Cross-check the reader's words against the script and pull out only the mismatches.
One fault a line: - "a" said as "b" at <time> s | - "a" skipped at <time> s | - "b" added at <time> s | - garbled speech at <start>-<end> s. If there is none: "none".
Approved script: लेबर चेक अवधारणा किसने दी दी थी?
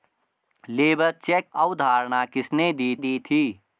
none